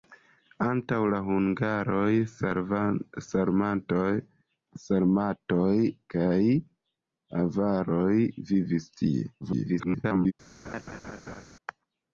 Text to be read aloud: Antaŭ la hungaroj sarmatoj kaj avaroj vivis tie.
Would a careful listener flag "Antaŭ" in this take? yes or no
no